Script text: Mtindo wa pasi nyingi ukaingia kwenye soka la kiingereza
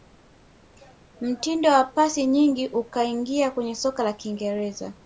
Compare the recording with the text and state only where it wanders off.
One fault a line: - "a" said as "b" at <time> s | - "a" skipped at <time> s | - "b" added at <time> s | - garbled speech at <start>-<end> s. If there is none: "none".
none